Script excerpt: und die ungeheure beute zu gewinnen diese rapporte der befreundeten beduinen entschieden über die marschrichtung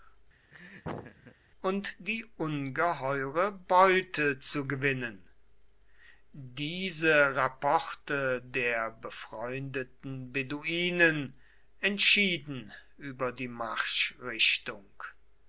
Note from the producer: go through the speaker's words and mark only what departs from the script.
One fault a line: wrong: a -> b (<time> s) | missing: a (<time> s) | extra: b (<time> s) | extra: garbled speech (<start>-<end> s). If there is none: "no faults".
no faults